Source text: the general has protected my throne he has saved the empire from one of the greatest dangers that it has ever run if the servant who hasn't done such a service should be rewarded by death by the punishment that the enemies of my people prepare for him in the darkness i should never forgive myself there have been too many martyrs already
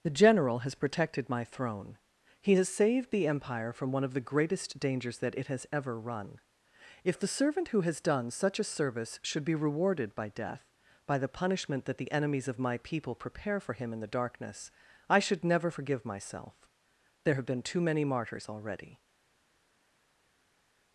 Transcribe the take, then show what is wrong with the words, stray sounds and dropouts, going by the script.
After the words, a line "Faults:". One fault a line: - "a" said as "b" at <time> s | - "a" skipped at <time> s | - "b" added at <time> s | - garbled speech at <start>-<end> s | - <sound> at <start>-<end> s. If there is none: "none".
the general has protected my throne he has saved the empire from one of the greatest dangers that it has ever run if the servant who has done such a service should be rewarded by death by the punishment that the enemies of my people prepare for him in the darkness i should never forgive myself there have been too many martyrs already
Faults:
- "hasn't" said as "has" at 7.8 s